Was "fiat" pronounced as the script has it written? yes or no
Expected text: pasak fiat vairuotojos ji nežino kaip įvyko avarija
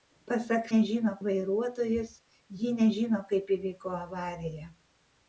no